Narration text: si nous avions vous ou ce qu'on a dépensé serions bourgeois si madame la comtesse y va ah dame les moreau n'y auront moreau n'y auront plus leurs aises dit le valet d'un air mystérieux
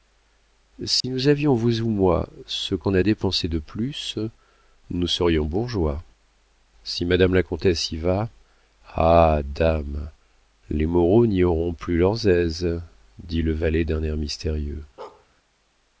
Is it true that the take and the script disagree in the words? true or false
true